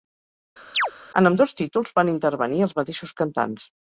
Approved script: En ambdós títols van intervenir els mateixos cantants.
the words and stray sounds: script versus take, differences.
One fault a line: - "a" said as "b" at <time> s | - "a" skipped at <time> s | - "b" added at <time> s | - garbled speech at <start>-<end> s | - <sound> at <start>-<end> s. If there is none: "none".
- chirp at 0.7-0.9 s